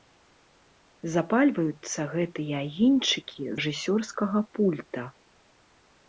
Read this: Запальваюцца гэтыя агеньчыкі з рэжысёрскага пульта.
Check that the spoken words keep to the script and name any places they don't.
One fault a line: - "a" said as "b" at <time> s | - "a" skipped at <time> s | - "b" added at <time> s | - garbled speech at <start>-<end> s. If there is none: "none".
- "з" skipped at 3.4 s